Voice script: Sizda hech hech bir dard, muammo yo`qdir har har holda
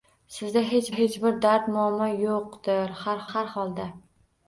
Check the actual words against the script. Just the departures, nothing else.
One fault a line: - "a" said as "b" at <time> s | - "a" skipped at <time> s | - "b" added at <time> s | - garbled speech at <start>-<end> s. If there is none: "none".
none